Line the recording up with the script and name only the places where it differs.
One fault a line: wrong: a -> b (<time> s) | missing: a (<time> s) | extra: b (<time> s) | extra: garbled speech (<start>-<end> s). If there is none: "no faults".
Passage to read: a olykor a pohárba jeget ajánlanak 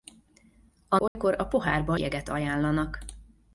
no faults